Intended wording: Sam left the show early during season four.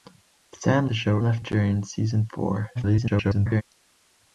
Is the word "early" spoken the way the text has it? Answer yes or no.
no